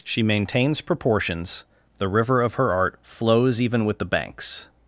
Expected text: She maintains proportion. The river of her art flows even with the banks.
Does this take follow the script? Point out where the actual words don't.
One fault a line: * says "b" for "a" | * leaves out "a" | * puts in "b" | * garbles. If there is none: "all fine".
* says "proportions" for "proportion"